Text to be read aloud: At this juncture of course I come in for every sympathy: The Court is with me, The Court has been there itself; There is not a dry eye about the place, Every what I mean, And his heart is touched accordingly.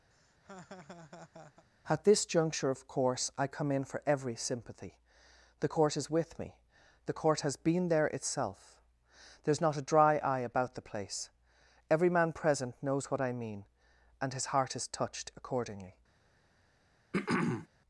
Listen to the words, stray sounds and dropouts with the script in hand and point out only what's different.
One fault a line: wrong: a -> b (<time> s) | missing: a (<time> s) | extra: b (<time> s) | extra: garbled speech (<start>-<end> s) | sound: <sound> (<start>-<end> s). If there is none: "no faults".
sound: laugh (0.1-1.7 s)
extra: man present knows (12.1 s)
sound: throat clearing (17.1-17.7 s)